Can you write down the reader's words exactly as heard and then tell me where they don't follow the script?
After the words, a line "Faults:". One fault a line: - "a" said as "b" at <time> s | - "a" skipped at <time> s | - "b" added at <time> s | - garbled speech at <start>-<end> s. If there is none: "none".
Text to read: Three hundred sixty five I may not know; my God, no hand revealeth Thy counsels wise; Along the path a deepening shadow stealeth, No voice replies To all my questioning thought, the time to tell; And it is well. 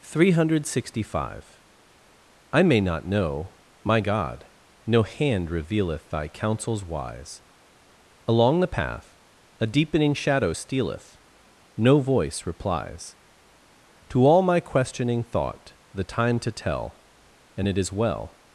Three hundred sixty five I may not know; my God, no hand revealeth Thy counsels wise; Along the path a deepening shadow stealeth, No voice replies To all my questioning thought, the time to tell; And it is well.
Faults:
none